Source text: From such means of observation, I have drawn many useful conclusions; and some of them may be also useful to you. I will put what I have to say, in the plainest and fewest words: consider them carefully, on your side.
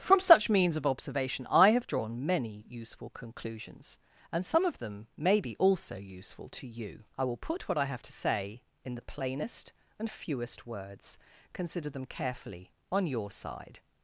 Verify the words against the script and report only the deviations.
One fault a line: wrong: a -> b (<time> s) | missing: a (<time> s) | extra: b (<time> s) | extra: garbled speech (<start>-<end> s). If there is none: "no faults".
no faults